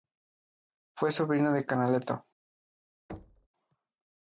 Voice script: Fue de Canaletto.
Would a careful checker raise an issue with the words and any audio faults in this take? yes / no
yes